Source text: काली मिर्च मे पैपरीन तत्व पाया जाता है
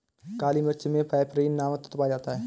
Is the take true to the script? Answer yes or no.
no